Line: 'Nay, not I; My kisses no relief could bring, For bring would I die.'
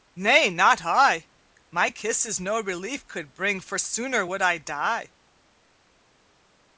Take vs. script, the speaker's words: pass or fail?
fail